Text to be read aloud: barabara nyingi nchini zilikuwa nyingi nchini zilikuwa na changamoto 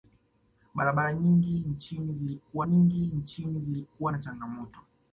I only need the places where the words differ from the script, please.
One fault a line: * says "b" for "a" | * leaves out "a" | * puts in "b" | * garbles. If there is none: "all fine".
all fine